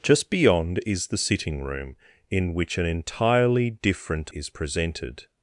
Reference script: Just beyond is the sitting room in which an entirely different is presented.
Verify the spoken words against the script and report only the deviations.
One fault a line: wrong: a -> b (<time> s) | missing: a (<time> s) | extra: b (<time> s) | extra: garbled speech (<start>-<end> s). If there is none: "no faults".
no faults